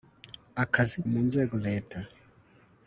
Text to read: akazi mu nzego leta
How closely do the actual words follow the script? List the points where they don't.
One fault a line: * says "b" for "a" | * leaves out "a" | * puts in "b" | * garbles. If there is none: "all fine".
all fine